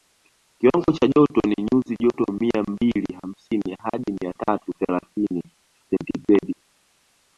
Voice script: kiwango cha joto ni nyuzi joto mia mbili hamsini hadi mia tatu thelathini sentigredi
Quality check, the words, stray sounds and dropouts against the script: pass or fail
pass